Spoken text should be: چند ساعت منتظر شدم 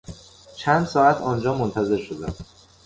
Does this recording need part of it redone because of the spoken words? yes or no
yes